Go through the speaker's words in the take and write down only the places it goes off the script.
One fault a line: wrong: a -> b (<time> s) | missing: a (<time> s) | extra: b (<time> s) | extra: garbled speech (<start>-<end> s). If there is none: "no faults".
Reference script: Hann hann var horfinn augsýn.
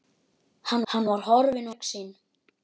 no faults